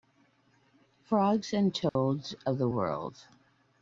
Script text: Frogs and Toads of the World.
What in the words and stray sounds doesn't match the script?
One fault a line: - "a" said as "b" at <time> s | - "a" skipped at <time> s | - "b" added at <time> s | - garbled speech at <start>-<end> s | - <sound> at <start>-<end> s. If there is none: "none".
- dropout at 1.9-2.0 s